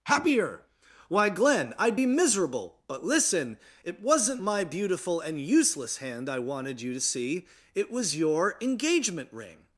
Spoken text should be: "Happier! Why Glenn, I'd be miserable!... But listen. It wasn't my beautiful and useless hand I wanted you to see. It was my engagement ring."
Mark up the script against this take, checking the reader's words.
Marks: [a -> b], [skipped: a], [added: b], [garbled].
"Happier! Why Glenn, I'd be miserable!... But listen. It wasn't my beautiful and useless hand I wanted you to see. It was [my -> your] engagement ring."